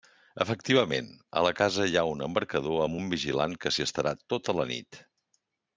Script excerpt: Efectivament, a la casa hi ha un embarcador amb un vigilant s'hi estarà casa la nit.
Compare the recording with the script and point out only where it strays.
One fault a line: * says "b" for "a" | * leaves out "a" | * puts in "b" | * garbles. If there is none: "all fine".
* puts in "que"
* says "tota" for "casa"